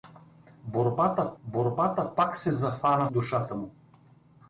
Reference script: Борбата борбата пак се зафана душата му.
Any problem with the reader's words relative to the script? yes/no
no